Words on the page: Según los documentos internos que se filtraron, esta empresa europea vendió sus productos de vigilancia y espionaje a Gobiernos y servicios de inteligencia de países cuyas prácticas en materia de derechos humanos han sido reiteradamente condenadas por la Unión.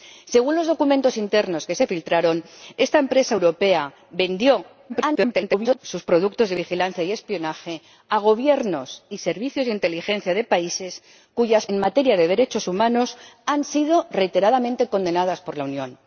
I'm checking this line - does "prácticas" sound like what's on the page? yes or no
no